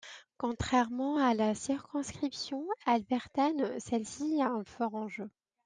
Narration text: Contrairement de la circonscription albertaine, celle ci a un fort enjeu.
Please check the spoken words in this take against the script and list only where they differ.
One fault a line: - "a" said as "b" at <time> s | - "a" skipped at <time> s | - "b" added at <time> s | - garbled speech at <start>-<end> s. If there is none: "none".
- "de" said as "à" at 1.2 s